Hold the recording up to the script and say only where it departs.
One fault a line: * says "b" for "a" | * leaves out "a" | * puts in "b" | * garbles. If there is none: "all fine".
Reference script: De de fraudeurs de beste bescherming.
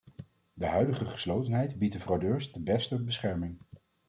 * puts in "huidige geslotenheid biedt"